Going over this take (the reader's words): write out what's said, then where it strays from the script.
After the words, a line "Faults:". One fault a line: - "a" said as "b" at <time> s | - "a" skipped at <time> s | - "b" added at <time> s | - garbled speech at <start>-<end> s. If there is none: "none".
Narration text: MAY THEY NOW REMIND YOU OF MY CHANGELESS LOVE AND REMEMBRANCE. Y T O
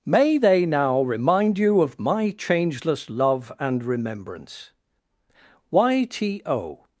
MAY THEY NOW REMIND YOU OF MY CHANGELESS LOVE AND REMEMBRANCE. Y T O
Faults:
none